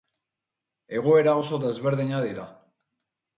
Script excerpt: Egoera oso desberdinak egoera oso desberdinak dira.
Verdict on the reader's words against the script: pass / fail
fail